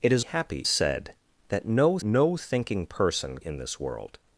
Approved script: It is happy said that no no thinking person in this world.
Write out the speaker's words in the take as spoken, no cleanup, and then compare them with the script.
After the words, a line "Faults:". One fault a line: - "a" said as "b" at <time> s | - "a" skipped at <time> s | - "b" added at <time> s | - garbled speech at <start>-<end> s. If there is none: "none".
It is happy said that no no thinking person in this world.
Faults:
none